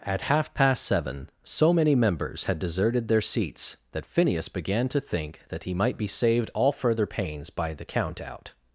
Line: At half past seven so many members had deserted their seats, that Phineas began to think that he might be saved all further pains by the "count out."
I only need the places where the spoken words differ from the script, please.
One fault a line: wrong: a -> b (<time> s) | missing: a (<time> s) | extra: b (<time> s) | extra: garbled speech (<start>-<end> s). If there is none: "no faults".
no faults